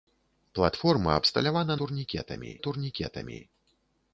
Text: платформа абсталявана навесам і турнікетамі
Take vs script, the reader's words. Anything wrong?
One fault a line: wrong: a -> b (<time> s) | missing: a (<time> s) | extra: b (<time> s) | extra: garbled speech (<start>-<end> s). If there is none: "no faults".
wrong: навесам -> турнікетамі (1.7 s)